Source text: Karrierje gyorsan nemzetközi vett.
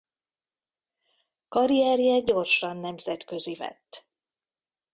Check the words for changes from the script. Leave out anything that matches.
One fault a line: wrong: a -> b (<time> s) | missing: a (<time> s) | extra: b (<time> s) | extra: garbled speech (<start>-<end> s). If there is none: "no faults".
no faults